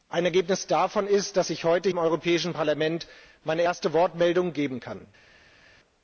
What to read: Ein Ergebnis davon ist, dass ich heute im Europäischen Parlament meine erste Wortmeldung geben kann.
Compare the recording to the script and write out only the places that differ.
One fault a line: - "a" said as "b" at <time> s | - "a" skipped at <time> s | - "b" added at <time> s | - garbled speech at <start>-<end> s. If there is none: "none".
none